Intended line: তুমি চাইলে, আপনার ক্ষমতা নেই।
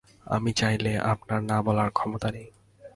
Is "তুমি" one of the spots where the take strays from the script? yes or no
yes